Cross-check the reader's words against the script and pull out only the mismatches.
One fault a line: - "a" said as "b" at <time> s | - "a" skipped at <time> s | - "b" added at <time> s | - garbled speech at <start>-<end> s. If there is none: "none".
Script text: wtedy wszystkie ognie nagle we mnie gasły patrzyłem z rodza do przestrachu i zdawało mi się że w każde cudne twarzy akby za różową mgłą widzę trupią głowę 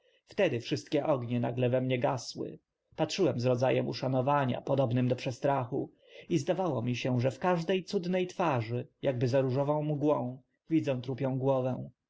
- "em uszanowania podobnym" added at 3.7 s